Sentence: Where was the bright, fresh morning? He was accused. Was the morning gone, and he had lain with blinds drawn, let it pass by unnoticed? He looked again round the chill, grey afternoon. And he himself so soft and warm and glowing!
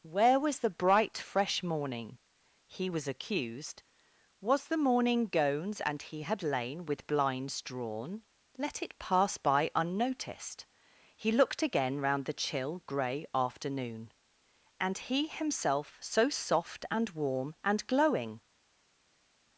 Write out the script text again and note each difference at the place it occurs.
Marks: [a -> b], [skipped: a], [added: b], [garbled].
Where was the bright, fresh morning? He was accused. Was the morning [gone, -> gones] and he had lain with blinds drawn, let it pass by unnoticed? He looked again round the chill, grey afternoon. And he himself so soft and warm and glowing!